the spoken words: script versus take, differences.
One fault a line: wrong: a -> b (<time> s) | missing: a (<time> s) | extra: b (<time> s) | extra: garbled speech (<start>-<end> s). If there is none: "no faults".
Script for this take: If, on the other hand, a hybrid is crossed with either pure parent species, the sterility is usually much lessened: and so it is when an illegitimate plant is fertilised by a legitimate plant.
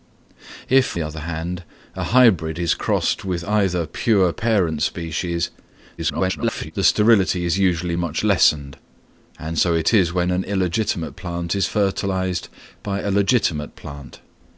missing: on (1.0 s)
extra: garbled speech (6.0-6.7 s)